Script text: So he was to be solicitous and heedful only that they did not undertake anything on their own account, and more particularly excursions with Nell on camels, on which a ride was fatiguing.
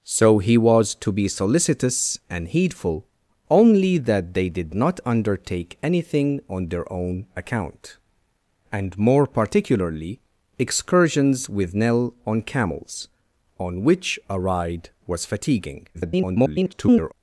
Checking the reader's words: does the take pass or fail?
fail